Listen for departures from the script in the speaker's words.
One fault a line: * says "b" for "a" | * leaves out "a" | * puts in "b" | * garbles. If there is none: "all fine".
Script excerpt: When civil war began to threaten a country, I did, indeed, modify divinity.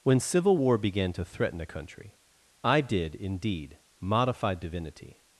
all fine